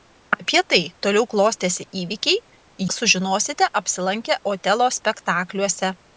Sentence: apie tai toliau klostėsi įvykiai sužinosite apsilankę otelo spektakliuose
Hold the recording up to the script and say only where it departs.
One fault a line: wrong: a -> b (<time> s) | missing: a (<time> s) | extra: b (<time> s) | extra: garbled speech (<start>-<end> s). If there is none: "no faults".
no faults